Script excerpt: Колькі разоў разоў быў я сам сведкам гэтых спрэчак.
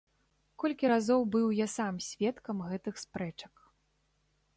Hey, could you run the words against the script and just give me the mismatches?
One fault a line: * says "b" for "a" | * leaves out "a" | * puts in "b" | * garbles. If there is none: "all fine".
* leaves out "разоў"